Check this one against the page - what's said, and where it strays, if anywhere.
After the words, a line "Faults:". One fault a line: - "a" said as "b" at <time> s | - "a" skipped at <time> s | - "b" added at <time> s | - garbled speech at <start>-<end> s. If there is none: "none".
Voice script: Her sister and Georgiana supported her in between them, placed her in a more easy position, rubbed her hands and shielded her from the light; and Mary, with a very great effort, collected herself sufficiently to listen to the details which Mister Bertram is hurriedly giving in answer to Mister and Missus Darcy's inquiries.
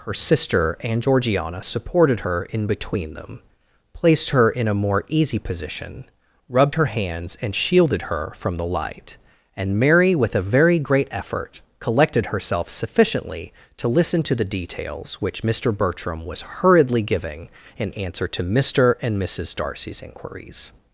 Her sister and Georgiana supported her in between them, placed her in a more easy position, rubbed her hands and shielded her from the light; and Mary, with a very great effort, collected herself sufficiently to listen to the details which Mister Bertram was hurriedly giving in answer to Mister and Missus Darcy's inquiries.
Faults:
- "is" said as "was" at 16.2 s